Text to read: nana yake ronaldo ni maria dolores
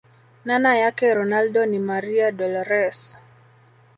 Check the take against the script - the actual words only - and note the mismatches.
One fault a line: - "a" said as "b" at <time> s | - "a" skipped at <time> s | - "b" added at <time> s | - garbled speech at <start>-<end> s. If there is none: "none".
none